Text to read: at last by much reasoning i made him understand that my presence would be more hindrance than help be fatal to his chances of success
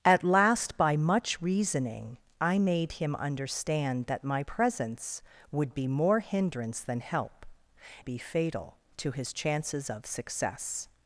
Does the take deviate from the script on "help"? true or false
false